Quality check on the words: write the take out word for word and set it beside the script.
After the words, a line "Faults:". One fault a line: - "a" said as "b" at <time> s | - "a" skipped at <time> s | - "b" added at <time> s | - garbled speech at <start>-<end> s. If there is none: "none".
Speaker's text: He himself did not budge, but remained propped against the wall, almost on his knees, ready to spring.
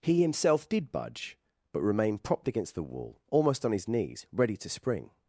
He himself did budge, but remained propped against the wall, almost on his knees, ready to spring.
Faults:
- "not" skipped at 0.9 s